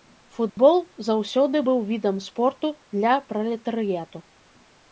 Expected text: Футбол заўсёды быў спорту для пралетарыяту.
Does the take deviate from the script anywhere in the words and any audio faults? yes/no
yes